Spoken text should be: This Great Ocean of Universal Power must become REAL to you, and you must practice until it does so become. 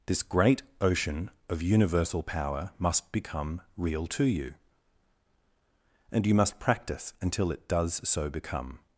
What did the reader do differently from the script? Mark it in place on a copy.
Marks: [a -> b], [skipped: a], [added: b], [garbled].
This Great Ocean of Universal Power must become REAL to you, and you must practice until it does so become.